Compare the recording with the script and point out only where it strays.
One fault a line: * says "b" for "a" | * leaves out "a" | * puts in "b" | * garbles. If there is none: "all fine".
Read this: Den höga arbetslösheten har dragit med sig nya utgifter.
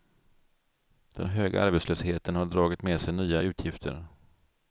all fine